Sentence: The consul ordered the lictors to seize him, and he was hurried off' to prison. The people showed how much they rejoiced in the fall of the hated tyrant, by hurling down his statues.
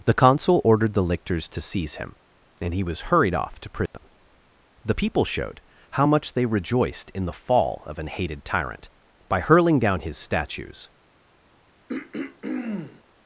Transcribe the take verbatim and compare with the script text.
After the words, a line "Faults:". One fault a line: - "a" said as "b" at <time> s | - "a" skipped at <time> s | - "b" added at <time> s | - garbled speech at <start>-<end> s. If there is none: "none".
The consul ordered the lictors to seize him, and he was hurried off' to prison. The people showed how much they rejoiced in the fall of an hated tyrant, by hurling down his statues.
Faults:
- "the" said as "an" at 8.0 s